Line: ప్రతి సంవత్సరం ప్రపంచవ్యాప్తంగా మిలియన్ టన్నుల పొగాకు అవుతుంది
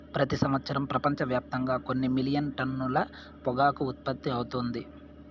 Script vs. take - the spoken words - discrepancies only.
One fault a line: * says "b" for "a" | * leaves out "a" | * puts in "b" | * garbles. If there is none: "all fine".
* puts in "కొన్ని"
* puts in "ఉత్పత్తి"